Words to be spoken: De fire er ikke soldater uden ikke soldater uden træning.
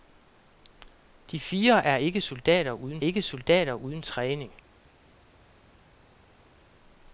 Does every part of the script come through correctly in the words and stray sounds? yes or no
yes